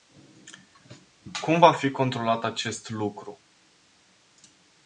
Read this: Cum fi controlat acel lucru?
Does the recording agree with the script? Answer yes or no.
no